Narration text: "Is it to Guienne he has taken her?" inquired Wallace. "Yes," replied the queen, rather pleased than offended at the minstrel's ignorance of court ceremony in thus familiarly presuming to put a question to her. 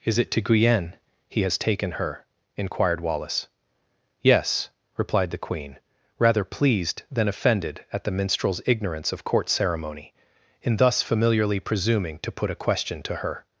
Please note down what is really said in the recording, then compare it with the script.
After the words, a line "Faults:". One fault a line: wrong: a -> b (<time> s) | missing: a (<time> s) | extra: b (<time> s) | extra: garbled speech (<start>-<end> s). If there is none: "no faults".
"Is it to Guienne he has taken her?" inquired Wallace. "Yes," replied the queen, rather pleased than offended at the minstrel's ignorance of court ceremony in thus familiarly presuming to put a question to her.
Faults:
no faults